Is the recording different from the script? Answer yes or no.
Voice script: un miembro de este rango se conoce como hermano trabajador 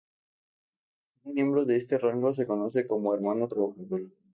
no